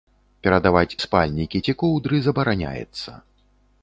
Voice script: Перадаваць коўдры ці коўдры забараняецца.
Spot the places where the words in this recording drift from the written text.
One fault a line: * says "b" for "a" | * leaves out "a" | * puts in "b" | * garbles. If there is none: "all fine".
* says "спальнікі" for "коўдры"